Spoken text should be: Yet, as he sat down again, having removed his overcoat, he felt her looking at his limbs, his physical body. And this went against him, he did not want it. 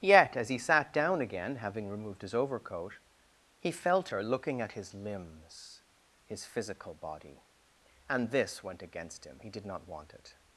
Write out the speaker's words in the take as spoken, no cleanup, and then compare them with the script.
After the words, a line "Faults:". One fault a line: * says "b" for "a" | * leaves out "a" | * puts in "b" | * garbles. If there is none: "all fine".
Yet, as he sat down again, having removed his overcoat, he felt her looking at his limbs, his physical body. And this went against him, he did not want it.
Faults:
all fine